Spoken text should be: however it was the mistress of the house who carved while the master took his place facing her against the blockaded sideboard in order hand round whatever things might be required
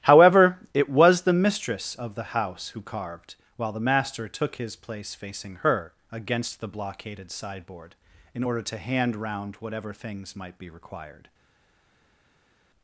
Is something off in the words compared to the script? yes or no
yes